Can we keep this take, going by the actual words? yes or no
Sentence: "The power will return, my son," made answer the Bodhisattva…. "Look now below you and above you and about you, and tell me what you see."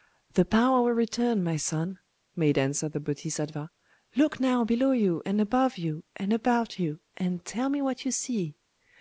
yes